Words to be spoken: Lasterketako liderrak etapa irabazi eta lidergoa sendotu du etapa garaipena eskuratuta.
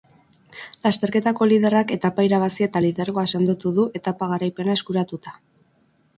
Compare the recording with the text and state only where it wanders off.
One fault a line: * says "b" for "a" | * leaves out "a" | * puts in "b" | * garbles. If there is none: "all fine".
all fine